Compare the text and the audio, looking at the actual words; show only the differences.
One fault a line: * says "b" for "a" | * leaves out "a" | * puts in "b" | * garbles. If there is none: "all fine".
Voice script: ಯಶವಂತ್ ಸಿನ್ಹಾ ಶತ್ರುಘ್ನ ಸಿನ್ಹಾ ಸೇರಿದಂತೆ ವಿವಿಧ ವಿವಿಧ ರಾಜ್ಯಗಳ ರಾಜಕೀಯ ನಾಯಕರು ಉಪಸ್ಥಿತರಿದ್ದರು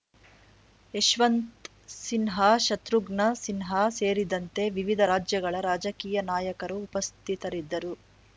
* leaves out "ವಿವಿಧ"